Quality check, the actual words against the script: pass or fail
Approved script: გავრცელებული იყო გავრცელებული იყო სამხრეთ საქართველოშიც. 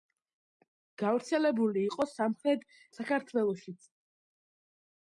fail